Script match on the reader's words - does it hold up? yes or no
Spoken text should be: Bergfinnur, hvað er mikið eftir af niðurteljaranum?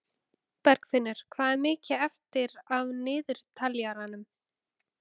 yes